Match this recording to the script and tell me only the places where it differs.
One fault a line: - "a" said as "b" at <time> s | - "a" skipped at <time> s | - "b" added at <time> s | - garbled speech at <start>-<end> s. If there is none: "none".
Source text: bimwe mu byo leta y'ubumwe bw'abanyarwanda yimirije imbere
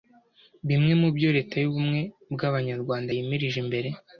none